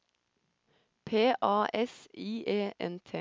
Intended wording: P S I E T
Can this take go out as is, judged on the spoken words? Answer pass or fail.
fail